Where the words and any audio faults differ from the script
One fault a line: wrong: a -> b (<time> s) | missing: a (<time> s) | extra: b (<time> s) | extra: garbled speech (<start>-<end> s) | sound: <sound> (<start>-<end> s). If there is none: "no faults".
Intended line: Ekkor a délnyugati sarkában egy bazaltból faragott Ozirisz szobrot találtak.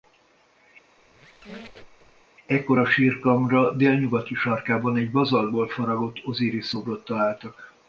sound: squeak (1.0-2.3 s)
extra: sírkamra (2.9 s)